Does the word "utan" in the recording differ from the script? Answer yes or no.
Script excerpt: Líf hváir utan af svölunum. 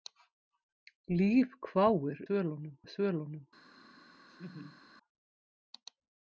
yes